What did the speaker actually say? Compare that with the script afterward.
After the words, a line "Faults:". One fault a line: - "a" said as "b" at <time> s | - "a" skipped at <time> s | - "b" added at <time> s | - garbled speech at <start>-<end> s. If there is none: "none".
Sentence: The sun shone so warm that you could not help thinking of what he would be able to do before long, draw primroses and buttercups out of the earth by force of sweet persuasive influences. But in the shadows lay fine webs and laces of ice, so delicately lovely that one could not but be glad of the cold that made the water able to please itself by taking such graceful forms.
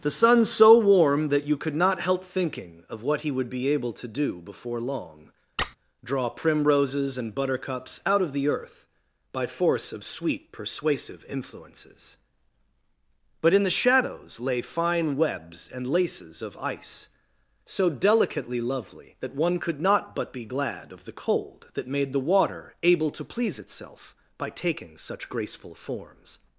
The sun so warm that you could not help thinking of what he would be able to do before long, draw primroses and buttercups out of the earth by force of sweet persuasive influences. But in the shadows lay fine webs and laces of ice, so delicately lovely that one could not but be glad of the cold that made the water able to please itself by taking such graceful forms.
Faults:
- "shone" skipped at 0.5 s